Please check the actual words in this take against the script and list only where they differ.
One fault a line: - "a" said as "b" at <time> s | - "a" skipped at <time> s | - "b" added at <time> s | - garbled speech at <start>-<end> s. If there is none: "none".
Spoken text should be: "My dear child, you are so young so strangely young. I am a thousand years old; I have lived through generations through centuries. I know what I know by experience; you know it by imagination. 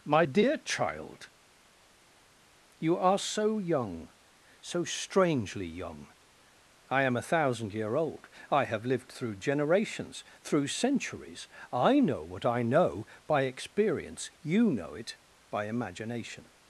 - "years" said as "year" at 7.7 s